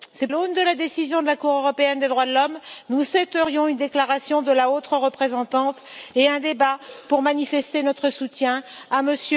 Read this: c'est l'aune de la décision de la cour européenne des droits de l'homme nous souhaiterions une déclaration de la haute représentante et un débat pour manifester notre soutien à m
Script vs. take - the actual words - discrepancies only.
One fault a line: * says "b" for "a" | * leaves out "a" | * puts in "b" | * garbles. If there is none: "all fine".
all fine